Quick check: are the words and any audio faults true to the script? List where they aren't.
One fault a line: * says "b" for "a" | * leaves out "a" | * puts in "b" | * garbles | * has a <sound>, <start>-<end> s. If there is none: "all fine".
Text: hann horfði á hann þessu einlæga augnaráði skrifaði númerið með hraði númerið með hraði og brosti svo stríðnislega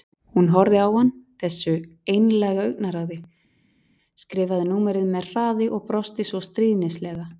* says "hún" for "hann"
* leaves out "númerið með hraði"